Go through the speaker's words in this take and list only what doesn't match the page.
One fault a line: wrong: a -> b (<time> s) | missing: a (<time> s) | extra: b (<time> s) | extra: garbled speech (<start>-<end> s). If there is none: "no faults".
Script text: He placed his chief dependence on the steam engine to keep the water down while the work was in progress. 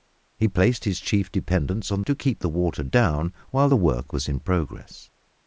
missing: the steam engine (2.0 s)